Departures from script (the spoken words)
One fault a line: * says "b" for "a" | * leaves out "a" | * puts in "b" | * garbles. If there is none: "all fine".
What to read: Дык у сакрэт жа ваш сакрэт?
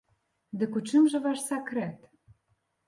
* says "чым" for "сакрэт"